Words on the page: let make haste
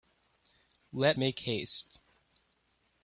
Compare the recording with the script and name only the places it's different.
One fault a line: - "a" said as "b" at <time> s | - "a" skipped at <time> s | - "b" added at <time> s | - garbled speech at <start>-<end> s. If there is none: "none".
none